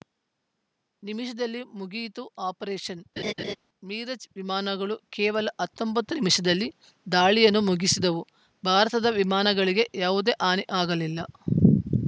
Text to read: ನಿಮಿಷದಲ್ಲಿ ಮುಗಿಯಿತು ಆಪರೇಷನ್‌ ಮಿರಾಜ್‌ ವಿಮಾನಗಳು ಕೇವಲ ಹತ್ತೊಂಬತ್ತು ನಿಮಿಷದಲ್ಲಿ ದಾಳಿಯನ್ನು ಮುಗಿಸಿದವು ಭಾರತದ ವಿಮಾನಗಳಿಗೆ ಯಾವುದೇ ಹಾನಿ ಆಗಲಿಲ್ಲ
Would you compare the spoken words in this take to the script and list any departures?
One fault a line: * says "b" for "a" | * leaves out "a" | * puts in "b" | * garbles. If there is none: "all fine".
all fine